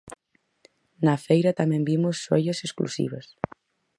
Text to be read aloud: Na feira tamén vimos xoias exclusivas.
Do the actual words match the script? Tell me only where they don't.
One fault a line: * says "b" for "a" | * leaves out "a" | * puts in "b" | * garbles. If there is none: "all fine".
all fine